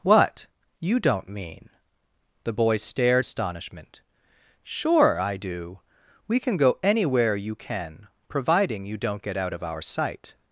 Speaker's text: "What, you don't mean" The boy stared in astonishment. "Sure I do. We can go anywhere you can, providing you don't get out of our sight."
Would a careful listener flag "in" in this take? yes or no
yes